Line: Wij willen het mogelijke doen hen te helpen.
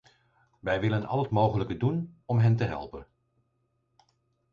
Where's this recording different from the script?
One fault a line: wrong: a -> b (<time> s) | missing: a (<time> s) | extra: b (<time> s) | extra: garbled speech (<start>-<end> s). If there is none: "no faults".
extra: al (1.1 s)
extra: om (2.2 s)